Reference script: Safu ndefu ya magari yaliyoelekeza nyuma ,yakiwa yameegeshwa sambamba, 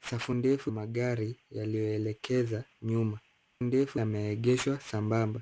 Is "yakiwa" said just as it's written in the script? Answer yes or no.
no